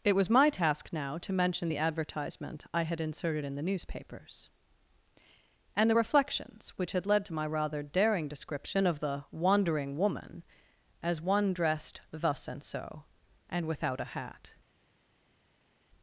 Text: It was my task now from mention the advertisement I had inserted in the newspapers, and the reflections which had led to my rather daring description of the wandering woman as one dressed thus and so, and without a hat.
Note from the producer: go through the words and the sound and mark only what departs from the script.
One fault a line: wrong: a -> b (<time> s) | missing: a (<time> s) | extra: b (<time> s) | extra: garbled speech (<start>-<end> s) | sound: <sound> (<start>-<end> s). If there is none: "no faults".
wrong: from -> to (1.2 s)